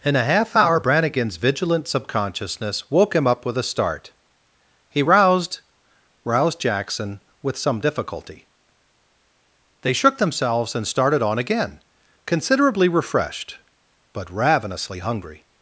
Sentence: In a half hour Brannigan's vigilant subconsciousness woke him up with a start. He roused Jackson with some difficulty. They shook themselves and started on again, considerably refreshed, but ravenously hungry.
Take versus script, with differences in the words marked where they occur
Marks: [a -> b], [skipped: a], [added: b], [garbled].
In a half hour Brannigan's vigilant subconsciousness woke him up with a start. He roused [added: roused] Jackson with some difficulty. They shook themselves and started on again, considerably refreshed, but ravenously hungry.